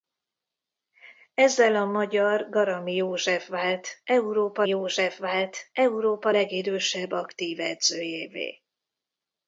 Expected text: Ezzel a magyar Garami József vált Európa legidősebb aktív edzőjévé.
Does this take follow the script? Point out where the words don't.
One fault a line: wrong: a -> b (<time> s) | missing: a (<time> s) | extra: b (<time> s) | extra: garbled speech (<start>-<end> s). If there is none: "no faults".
extra: József vált Európa (4.7 s)